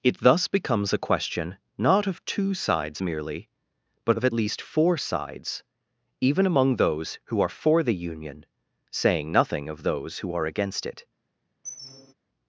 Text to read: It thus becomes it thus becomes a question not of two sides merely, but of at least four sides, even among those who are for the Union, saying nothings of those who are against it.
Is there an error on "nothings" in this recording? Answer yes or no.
yes